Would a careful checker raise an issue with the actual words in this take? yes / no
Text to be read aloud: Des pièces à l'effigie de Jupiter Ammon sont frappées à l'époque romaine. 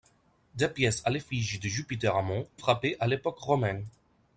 yes